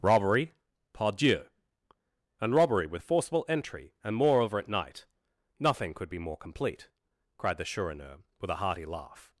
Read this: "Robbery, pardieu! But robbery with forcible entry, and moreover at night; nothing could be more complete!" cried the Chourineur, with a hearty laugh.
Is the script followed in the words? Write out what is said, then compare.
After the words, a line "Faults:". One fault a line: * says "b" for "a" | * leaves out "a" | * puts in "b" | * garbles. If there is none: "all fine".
"Robbery, pardieu! And robbery with forcible entry, and moreover at night; nothing could be more complete!" cried the Chourineur, with a hearty laugh.
Faults:
* says "And" for "But"